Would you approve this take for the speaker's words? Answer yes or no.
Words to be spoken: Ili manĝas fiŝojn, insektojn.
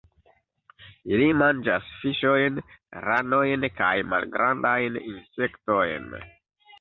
no